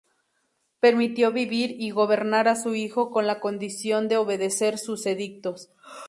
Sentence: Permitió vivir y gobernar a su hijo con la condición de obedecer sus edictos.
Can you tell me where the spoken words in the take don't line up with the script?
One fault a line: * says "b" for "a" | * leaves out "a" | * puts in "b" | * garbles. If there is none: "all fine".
all fine